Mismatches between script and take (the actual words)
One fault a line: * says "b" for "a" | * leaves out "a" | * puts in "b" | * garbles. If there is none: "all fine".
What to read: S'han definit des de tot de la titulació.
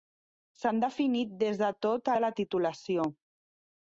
all fine